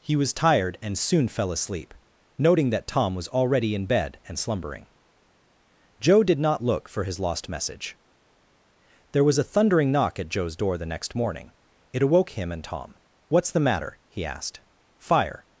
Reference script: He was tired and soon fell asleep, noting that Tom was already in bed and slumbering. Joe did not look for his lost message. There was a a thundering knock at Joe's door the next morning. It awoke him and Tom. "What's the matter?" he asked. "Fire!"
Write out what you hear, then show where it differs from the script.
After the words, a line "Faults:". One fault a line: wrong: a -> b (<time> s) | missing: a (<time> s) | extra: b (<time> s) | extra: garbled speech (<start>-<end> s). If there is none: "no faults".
He was tired and soon fell asleep, noting that Tom was already in bed and slumbering. Joe did not look for his lost message. There was a thundering knock at Joe's door the next morning. It awoke him and Tom. "What's the matter?" he asked. "Fire!"
Faults:
missing: a (9.5 s)